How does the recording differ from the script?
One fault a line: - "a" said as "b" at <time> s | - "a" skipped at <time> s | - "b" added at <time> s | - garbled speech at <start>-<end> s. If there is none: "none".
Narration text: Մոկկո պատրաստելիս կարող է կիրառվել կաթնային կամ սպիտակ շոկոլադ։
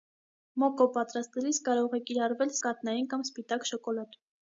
none